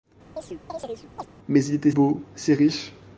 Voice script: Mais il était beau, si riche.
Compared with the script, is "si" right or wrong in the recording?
right